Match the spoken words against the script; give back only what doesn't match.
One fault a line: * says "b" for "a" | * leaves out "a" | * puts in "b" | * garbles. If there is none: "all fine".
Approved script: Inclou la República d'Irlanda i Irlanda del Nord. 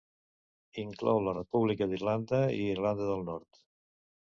all fine